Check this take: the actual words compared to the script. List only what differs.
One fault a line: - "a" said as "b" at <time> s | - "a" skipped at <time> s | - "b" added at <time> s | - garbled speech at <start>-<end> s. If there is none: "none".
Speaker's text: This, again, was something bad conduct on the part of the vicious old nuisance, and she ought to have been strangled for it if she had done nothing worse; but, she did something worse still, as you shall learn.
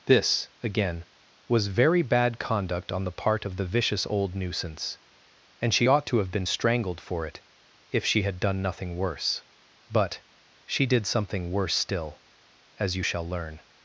- "something" said as "very" at 1.7 s